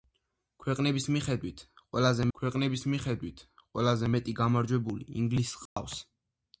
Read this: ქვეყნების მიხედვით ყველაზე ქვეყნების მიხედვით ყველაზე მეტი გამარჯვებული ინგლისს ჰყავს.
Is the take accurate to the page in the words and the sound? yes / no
no